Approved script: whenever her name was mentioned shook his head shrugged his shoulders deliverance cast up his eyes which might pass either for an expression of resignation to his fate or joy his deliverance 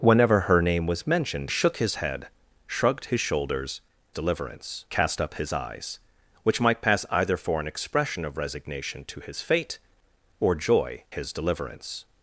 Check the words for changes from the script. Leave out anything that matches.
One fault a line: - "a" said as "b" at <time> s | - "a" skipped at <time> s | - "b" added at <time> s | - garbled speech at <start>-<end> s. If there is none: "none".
none